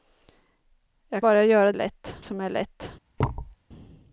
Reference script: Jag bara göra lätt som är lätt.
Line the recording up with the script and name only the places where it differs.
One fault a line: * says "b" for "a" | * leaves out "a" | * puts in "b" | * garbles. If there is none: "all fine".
all fine